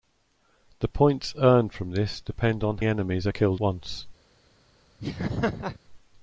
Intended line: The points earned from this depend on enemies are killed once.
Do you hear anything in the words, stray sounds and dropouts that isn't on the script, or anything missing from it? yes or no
yes